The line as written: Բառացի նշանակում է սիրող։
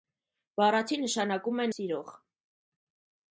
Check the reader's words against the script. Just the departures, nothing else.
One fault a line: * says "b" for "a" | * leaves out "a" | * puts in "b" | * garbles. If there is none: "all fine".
all fine